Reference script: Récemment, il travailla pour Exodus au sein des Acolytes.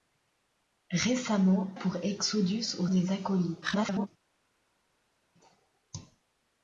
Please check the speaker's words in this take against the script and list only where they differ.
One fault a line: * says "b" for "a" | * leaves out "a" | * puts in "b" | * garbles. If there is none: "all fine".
* leaves out "il travailla"
* leaves out "sein"
* garbles